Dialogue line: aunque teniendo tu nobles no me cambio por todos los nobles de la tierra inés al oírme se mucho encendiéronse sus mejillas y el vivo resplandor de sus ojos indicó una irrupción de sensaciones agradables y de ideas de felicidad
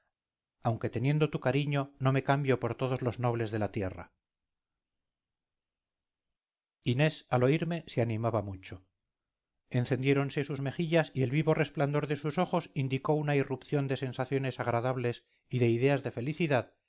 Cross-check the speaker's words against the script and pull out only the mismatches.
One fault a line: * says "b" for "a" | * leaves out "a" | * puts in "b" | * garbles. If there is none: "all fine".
* says "cariño" for "nobles"
* puts in "animaba"